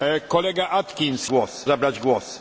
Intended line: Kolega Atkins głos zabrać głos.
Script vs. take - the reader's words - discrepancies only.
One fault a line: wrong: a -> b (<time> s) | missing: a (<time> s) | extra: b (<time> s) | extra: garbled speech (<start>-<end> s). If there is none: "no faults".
no faults